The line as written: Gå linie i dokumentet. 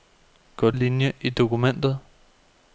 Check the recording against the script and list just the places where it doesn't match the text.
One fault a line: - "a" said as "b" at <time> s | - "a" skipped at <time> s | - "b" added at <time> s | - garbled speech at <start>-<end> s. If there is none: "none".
none